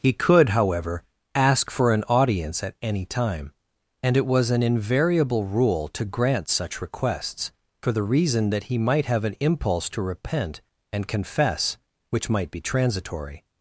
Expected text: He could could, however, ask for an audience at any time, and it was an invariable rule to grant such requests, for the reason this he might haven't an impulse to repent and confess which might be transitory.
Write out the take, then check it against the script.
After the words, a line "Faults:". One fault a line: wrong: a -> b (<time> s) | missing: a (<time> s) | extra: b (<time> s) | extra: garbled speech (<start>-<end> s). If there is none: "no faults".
He could, however, ask for an audience at any time, and it was an invariable rule to grant such requests, for the reason that he might have an impulse to repent and confess which might be transitory.
Faults:
missing: could (0.5 s)
wrong: this -> that (8.5 s)
wrong: haven't -> have (9.1 s)